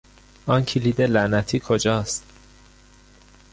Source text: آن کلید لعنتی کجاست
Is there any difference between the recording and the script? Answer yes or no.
no